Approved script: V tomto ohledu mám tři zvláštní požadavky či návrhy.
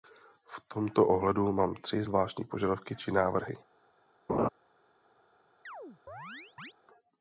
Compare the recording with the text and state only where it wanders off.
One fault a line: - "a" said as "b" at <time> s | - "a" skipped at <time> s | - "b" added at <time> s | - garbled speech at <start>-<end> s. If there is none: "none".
none